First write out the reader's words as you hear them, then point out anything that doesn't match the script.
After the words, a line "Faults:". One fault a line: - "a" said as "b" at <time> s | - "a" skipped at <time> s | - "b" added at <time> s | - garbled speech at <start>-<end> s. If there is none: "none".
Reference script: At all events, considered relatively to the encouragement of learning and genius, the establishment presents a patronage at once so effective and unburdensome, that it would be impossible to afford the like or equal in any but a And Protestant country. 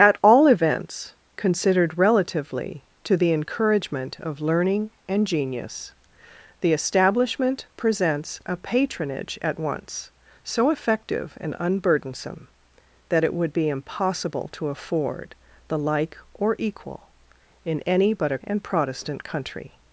At all events, considered relatively to the encouragement of learning and genius, the establishment presents a patronage at once so effective and unburdensome, that it would be impossible to afford the like or equal in any but a And Protestant country.
Faults:
none